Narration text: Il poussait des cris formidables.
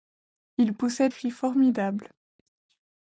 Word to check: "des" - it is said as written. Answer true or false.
false